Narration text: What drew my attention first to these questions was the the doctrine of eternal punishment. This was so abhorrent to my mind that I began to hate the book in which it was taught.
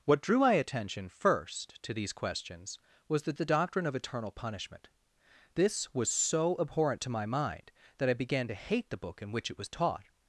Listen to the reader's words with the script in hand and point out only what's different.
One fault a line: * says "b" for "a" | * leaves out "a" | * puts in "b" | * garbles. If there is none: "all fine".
all fine